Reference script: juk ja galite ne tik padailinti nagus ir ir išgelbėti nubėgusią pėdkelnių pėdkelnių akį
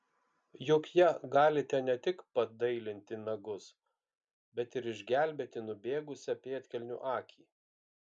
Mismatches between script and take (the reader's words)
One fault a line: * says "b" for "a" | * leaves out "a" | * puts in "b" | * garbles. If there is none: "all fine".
* says "bet" for "ir"
* leaves out "pėdkelnių"